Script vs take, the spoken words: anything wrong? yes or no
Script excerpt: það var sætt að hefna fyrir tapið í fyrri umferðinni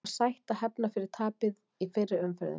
no